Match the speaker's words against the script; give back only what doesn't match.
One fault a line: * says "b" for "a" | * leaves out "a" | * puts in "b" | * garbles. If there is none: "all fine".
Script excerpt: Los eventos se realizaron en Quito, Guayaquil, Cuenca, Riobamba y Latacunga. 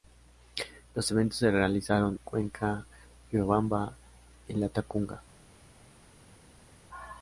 * leaves out "en Quito Guayaquil"